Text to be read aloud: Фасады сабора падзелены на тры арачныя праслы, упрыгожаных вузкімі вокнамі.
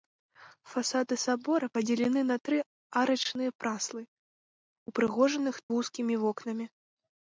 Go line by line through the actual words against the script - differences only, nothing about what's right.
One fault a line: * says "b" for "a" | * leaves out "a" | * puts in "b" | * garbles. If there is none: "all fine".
all fine